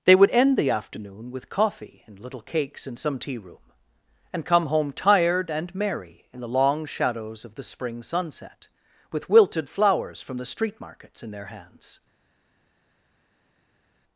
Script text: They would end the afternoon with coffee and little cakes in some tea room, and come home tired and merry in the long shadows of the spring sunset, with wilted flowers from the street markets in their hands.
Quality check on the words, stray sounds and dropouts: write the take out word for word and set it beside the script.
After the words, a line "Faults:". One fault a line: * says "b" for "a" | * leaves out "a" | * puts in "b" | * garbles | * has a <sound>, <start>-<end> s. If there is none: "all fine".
They would end the afternoon with coffee and little cakes in some tea room, and come home tired and merry in the long shadows of the spring sunset, with wilted flowers from the street markets in their hands.
Faults:
all fine